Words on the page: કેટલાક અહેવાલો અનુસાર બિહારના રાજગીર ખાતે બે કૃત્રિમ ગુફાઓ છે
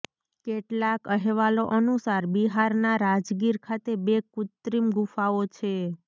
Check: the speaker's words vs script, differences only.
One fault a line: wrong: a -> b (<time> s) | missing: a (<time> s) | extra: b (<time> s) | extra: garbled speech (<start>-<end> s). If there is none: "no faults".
no faults